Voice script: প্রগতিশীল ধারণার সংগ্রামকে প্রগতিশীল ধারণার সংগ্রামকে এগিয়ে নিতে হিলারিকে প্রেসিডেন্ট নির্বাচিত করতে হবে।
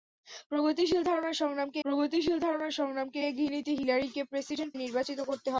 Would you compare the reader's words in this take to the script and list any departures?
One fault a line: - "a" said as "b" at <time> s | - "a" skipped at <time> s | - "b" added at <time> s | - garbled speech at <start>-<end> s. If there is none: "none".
none